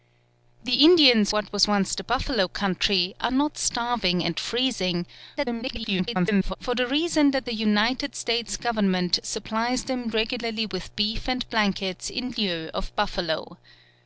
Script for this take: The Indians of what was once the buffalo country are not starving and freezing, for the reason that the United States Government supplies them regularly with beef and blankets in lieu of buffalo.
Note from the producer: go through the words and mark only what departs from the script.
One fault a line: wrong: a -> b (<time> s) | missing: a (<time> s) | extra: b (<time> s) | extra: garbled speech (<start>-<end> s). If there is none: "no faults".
missing: of (1.3 s)
extra: garbled speech (5.4-6.6 s)